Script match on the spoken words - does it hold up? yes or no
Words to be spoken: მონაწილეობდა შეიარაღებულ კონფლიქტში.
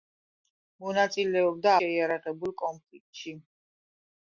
yes